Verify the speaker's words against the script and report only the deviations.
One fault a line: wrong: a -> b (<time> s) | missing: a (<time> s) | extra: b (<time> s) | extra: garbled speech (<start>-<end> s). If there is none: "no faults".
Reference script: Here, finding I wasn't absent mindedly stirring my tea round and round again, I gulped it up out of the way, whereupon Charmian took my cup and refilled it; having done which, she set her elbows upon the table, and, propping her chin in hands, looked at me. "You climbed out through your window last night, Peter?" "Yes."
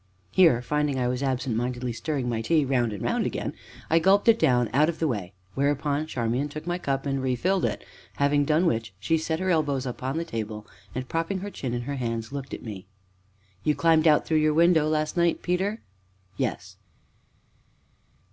wrong: wasn't -> was (1.1 s)
wrong: up -> down (4.4 s)
extra: her (11.8 s)